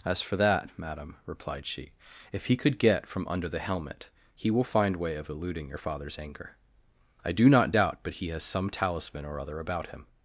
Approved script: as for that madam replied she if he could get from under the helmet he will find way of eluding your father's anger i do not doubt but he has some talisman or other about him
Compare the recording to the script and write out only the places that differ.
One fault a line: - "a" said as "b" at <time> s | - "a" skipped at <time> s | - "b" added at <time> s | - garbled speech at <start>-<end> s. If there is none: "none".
none